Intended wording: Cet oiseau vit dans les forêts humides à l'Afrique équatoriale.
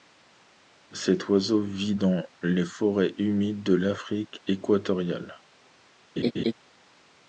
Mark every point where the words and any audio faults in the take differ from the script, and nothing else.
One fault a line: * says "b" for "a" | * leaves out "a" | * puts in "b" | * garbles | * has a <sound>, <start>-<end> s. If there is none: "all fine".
* says "de" for "à"
* has a laugh, 6.2-6.5 s